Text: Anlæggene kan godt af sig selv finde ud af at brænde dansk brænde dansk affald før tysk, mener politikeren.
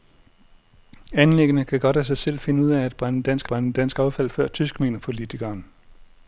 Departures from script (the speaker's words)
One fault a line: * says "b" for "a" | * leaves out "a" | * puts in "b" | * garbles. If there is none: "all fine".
all fine